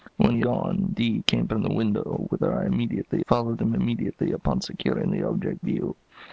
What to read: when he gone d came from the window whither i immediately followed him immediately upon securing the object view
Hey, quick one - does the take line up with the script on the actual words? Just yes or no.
yes